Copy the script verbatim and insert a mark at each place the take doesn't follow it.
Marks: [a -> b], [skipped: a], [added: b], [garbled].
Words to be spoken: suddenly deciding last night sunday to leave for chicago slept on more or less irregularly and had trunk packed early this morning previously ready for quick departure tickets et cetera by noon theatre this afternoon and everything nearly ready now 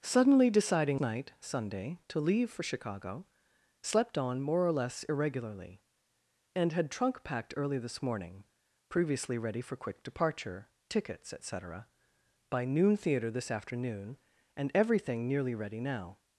suddenly deciding [skipped: last] night sunday to leave for chicago slept on more or less irregularly and had trunk packed early this morning previously ready for quick departure tickets et cetera by noon theatre this afternoon and everything nearly ready now